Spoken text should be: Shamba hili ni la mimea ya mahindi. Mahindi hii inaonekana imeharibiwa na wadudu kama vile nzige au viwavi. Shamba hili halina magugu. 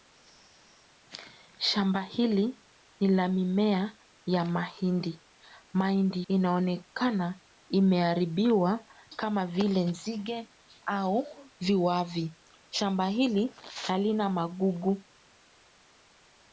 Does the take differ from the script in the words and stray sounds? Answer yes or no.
yes